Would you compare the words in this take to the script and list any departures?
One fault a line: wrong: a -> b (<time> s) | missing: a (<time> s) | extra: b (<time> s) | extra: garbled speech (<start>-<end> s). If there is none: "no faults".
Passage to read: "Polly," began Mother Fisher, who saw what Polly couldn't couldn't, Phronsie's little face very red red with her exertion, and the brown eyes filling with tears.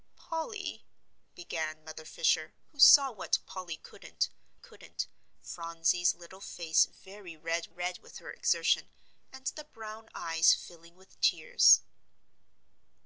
no faults